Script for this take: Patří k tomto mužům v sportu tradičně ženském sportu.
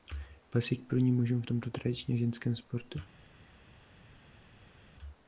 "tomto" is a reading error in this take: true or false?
true